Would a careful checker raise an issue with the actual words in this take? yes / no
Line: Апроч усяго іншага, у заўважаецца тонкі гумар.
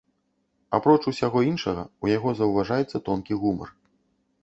yes